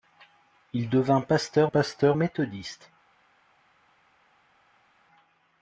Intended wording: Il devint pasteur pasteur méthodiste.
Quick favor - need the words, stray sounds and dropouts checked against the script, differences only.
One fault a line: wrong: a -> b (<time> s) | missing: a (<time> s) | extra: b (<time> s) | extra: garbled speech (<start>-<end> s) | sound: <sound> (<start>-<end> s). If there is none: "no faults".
no faults